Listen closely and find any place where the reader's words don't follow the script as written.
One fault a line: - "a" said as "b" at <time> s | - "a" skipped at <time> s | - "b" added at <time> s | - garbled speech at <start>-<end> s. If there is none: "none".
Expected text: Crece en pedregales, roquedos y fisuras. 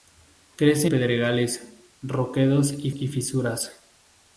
- "en" skipped at 0.9 s
- "y" added at 2.9 s